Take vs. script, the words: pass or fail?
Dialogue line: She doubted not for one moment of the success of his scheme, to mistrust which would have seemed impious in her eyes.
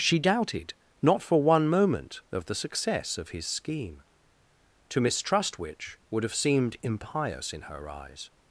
pass